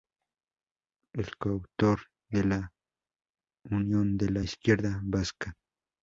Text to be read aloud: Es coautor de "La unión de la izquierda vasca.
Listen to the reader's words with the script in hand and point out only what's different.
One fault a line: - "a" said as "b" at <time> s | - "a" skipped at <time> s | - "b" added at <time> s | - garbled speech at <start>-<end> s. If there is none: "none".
none